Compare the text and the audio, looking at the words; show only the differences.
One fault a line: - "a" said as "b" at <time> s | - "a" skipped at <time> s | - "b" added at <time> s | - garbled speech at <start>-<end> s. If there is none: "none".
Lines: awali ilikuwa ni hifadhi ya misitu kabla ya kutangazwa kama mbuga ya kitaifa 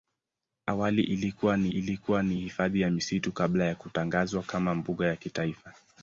- "ilikuwa ni" added at 1.7 s